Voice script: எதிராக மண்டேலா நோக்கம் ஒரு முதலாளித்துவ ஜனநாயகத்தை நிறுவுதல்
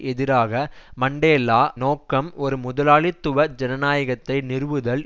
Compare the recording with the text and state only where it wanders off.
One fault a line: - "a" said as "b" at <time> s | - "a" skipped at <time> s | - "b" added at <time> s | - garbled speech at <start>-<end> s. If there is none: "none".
none